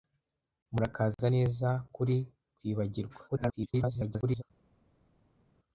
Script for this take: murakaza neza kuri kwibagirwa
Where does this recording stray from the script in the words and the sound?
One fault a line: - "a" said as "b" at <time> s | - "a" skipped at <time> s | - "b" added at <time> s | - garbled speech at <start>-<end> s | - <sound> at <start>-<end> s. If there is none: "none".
- garbled speech at 3.3-4.4 s